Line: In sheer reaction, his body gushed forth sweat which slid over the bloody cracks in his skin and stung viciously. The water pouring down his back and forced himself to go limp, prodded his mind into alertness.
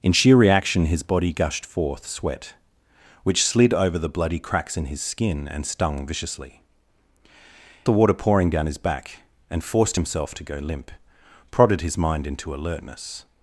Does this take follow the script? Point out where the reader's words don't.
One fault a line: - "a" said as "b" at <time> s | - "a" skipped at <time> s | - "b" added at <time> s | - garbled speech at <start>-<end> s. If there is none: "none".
none